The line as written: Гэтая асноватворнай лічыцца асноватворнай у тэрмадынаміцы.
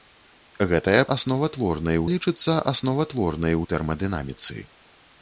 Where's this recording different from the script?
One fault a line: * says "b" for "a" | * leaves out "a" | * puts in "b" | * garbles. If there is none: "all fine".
all fine